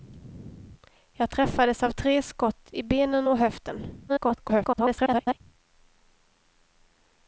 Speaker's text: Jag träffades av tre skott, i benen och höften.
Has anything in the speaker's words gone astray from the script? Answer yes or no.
yes